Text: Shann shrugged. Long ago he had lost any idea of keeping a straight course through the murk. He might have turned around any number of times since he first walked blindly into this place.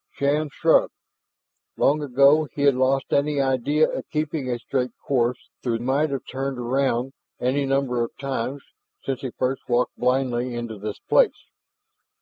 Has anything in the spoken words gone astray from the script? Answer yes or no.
yes